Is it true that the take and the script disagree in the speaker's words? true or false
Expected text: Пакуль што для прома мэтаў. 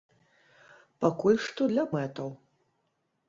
true